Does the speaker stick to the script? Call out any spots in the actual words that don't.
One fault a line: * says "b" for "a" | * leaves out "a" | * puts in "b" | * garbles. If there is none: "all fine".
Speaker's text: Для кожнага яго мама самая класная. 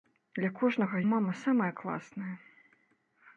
* leaves out "яго"